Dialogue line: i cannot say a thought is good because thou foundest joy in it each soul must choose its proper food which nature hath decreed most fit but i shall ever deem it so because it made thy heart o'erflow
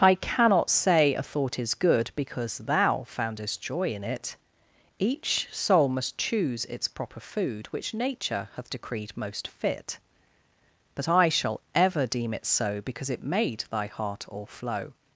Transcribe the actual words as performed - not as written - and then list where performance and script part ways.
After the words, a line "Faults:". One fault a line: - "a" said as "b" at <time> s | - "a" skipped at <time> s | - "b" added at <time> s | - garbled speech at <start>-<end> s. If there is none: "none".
i cannot say a thought is good because thou foundest joy in it each soul must choose its proper food which nature hath decreed most fit but i shall ever deem it so because it made thy heart o'erflow
Faults:
none